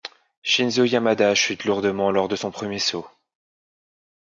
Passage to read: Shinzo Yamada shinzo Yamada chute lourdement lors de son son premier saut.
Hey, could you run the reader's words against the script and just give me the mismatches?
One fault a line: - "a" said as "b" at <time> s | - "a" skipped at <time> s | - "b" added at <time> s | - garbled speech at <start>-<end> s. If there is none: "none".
- "shinzo Yamada" skipped at 1.4 s
- "son" skipped at 2.5 s